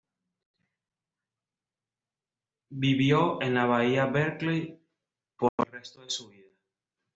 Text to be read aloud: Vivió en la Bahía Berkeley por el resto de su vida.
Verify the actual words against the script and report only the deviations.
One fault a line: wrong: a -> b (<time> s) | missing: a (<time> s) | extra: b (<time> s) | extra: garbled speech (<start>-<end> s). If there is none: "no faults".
no faults